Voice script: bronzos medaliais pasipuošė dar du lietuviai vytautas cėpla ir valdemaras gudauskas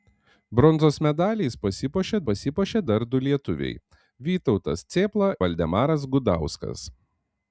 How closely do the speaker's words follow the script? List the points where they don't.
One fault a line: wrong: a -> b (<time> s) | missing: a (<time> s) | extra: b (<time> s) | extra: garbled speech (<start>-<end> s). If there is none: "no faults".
extra: pasipuošė (2.3 s)
missing: ir (5.3 s)